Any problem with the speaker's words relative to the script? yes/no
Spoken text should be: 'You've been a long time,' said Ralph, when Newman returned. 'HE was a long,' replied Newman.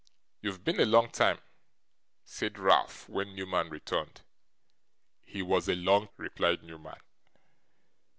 no